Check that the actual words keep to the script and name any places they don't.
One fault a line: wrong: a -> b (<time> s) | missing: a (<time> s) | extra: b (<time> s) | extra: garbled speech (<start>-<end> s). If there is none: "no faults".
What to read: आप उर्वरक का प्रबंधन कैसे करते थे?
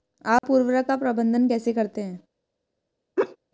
wrong: थे -> हैं (2.0 s)